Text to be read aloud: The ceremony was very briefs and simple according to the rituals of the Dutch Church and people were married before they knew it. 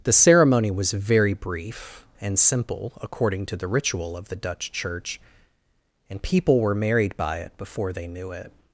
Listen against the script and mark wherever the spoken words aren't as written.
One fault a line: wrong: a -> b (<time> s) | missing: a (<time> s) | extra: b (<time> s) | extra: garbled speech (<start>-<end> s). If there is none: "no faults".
wrong: briefs -> brief (1.3 s)
wrong: rituals -> ritual (3.7 s)
extra: by it (7.2 s)